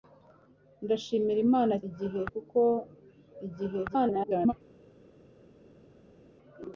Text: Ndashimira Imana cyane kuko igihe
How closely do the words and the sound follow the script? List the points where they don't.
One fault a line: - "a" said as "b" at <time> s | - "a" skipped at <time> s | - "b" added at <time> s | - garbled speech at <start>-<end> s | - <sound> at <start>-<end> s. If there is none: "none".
- "cyane" said as "igihe" at 1.9 s
- garbled speech at 3.9-4.5 s